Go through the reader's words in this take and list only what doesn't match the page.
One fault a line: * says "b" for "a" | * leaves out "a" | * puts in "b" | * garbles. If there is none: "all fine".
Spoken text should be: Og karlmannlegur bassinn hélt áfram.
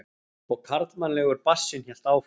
all fine